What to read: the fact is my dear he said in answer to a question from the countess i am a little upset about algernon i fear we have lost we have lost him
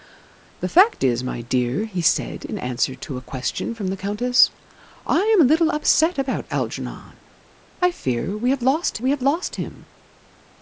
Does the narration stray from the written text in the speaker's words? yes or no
no